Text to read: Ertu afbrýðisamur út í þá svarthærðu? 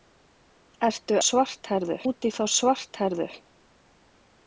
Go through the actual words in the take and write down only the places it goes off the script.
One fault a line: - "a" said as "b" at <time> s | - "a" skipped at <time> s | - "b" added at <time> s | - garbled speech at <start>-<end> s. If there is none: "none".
- "afbrýðisamur" said as "svarthærðu" at 1.3 s